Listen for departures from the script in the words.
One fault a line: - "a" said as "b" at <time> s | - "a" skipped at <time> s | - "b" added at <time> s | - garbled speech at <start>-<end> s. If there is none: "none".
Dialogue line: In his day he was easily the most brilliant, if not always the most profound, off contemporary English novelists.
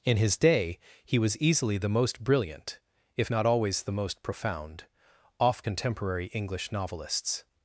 none